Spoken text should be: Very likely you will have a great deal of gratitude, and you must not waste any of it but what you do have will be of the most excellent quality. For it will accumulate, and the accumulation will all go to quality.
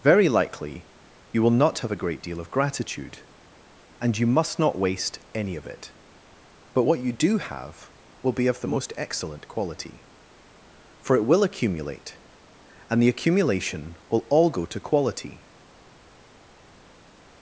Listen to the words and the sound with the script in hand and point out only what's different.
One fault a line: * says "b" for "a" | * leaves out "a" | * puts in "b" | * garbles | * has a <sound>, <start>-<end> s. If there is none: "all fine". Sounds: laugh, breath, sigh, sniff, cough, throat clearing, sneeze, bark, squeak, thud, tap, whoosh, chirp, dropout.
* puts in "not"